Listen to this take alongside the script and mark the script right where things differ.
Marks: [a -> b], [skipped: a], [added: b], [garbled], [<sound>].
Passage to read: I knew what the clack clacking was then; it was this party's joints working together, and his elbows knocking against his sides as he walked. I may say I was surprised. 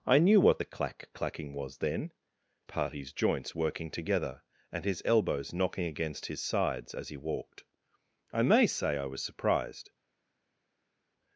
I knew what the clack clacking was then; [skipped: it was this] party's joints working together, and his elbows knocking against his sides as he walked. I may say I was surprised.